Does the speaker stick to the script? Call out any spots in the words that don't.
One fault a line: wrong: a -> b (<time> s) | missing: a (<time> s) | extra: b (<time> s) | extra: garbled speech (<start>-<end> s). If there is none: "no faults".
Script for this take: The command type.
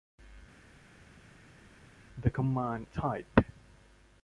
no faults